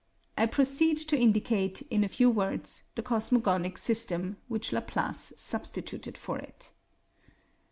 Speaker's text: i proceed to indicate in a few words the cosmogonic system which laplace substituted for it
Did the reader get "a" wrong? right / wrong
right